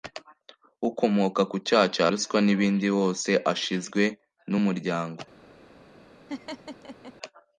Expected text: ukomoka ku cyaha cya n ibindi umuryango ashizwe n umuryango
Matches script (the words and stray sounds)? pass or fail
fail